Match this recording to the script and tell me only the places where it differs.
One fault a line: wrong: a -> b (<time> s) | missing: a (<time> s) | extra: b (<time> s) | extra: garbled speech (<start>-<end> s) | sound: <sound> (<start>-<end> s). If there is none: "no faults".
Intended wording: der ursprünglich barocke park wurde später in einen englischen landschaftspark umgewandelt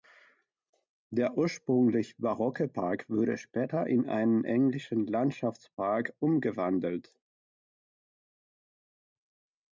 no faults